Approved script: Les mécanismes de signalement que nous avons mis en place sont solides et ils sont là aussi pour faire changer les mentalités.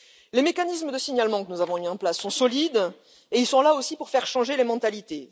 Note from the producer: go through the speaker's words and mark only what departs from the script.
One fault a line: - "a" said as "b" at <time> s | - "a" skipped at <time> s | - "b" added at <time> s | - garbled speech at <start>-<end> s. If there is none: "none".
none